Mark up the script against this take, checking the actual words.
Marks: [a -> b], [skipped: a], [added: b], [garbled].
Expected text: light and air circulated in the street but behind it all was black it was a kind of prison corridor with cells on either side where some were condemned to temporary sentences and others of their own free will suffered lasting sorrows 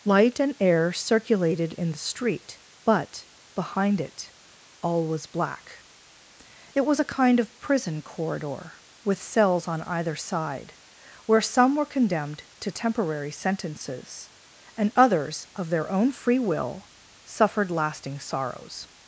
light and air circulated in the street but behind it all was black it was a kind of prison corridor with cells on either side where some were condemned to temporary sentences and others of their own free will suffered lasting sorrows